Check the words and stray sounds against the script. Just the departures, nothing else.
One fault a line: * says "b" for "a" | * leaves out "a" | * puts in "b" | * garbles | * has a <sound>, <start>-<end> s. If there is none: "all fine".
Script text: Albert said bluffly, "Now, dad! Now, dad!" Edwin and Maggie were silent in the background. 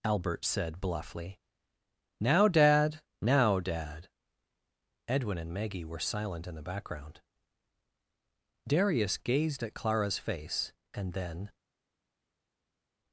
* puts in "Darius gazed at Clara's face and then"